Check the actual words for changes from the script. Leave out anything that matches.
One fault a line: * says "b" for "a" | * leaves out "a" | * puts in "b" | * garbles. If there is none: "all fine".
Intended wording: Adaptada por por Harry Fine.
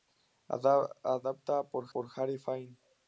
all fine